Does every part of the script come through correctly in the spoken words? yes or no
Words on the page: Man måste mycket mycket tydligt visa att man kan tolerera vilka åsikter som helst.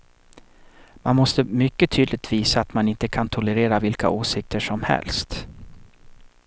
no